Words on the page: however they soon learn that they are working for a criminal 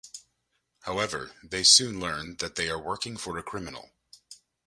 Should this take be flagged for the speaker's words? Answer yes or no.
no